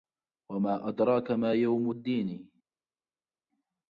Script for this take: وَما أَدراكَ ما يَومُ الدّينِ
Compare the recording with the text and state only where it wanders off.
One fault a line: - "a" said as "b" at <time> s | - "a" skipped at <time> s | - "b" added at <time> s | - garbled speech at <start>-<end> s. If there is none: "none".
none